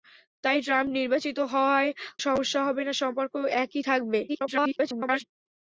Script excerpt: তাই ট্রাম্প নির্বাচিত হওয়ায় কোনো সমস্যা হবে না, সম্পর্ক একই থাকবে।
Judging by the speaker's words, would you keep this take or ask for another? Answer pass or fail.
fail